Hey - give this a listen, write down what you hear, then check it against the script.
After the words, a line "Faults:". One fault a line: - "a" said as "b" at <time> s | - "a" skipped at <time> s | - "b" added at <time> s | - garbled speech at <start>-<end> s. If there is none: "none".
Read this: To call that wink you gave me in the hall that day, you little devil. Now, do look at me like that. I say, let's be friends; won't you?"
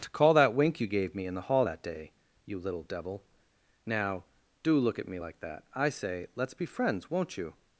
To call that wink you gave me in the hall that day, you little devil. Now, do look at me like that. I say, let's be friends; won't you?"
Faults:
none